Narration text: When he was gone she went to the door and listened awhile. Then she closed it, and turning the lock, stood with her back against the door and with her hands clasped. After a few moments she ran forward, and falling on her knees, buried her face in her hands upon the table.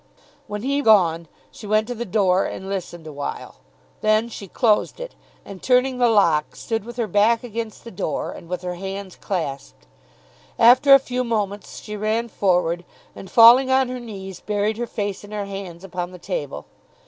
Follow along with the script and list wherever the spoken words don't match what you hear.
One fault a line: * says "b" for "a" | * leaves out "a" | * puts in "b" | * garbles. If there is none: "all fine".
* leaves out "was"